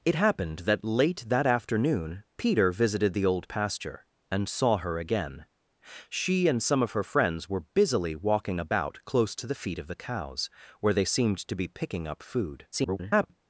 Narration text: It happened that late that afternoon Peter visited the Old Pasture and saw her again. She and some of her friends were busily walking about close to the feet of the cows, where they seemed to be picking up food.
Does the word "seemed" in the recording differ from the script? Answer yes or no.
no